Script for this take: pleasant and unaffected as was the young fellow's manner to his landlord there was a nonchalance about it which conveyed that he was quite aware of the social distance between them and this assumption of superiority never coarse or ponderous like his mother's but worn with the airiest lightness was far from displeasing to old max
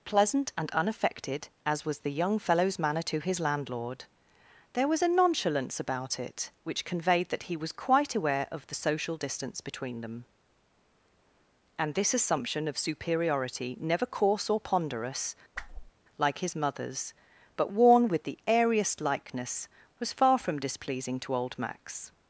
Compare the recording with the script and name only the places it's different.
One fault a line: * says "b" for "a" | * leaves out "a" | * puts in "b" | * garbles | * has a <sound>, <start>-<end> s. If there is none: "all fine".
* has a whoosh, 15.5-15.9 s
* says "likeness" for "lightness"